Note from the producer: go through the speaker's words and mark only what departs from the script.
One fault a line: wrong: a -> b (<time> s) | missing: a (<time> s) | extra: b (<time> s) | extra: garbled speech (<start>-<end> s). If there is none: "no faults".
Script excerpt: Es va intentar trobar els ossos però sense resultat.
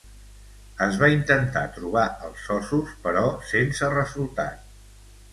no faults